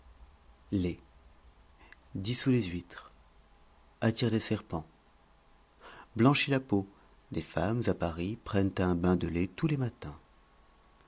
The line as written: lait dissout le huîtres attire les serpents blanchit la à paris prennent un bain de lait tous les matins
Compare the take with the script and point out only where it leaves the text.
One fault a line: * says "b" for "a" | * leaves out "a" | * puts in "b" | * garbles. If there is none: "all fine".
* says "les" for "le"
* puts in "peau des femmes"